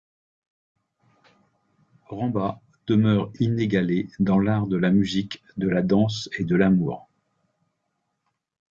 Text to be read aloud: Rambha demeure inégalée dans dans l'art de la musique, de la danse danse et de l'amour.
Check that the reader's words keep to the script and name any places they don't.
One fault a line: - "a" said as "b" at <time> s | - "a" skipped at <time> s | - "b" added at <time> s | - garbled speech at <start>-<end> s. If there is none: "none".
- "dans" skipped at 4.4 s
- "danse" skipped at 6.3 s